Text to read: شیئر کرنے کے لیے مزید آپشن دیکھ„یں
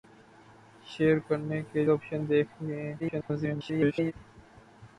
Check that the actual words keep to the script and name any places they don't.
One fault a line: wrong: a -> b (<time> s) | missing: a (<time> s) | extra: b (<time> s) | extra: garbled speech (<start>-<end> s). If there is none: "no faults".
missing: لیے مزید (1.8 s)
extra: garbled speech (3.0-4.1 s)